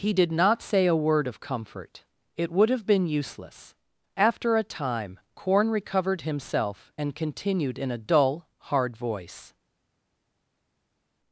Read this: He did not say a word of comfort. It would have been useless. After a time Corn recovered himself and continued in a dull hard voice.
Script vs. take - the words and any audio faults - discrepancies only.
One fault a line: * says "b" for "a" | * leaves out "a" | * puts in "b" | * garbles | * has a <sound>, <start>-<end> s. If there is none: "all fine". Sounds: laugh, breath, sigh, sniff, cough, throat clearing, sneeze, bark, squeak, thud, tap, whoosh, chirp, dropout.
all fine